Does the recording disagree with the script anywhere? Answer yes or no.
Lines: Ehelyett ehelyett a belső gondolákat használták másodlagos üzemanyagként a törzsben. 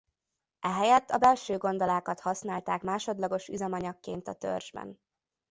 yes